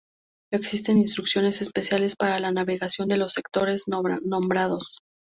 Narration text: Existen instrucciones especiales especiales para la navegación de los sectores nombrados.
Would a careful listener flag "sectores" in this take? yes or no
no